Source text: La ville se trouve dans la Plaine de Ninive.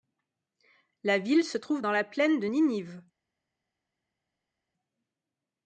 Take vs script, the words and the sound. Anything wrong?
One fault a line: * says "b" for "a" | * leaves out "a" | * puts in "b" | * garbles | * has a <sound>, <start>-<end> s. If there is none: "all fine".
all fine